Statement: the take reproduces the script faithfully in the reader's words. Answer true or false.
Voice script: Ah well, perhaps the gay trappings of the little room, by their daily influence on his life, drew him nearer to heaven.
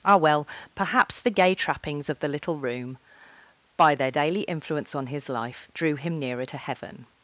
true